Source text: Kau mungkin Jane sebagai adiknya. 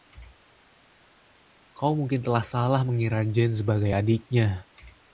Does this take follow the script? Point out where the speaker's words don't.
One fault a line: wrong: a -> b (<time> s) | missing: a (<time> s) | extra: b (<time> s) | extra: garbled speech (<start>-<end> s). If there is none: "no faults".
extra: telah salah mengira (2.2 s)